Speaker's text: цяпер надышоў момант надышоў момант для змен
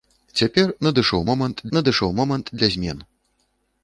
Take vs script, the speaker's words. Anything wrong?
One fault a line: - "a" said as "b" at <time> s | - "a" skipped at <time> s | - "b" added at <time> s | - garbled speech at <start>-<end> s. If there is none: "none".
none